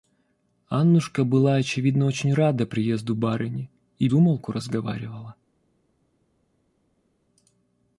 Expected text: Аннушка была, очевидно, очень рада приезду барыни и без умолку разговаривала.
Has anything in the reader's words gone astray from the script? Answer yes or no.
yes